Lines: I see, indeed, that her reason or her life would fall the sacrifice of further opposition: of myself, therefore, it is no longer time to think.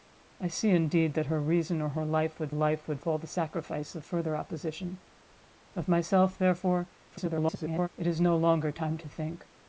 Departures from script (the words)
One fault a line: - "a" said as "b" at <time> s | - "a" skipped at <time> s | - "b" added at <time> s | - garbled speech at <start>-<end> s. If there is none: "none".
- "life would" added at 2.5 s
- garbled speech at 7.1-7.9 s